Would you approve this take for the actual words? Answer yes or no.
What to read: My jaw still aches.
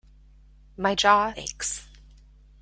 no